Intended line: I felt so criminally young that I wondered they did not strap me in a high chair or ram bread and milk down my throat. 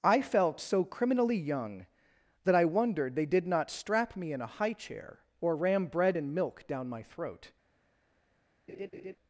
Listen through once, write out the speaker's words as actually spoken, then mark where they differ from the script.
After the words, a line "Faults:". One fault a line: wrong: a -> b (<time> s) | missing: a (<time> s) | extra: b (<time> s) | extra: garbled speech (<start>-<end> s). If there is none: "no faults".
I felt so criminally young that I wondered they did not strap me in a high chair or ram bread and milk down my throat.
Faults:
no faults